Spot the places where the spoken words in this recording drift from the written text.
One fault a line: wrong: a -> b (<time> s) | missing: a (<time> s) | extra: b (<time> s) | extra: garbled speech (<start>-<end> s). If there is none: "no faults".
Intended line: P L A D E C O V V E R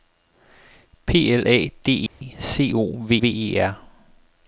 no faults